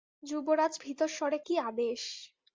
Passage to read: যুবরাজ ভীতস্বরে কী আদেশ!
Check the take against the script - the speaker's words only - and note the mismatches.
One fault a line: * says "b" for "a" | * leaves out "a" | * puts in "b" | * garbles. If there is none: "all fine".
all fine